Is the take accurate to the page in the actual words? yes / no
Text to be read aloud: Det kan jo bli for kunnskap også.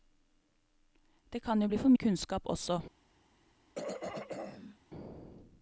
yes